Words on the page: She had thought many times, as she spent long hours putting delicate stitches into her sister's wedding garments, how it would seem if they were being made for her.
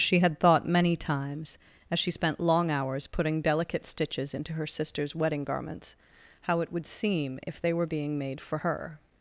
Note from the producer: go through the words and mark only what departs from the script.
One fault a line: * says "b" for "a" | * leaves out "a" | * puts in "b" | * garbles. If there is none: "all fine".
all fine